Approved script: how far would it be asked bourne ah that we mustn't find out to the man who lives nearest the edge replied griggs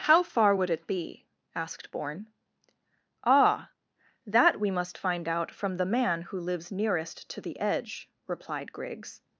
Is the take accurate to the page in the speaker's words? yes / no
no